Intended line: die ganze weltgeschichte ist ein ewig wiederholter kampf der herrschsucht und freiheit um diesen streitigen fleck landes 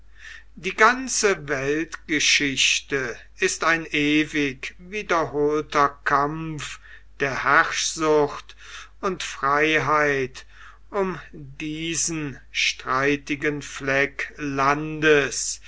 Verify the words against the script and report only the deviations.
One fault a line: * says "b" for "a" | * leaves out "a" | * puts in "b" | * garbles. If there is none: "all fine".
all fine